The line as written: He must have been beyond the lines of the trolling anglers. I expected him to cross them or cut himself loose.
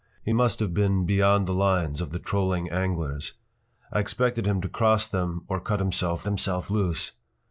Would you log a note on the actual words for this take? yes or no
yes